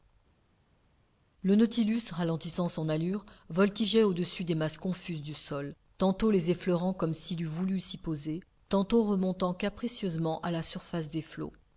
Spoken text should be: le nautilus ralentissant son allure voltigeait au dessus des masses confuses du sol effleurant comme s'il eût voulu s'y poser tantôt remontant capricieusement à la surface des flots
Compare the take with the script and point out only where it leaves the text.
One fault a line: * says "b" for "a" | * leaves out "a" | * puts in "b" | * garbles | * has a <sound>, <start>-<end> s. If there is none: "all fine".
* puts in "tantôt les"